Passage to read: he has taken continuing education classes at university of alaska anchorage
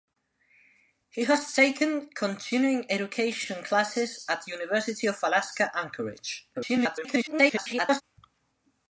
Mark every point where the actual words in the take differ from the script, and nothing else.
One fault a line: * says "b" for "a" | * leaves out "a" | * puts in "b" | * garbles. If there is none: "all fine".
* garbles